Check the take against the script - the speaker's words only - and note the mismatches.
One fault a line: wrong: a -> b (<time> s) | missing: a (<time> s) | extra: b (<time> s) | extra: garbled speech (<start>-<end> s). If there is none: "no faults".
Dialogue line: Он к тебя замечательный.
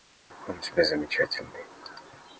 wrong: к -> у (0.5 s)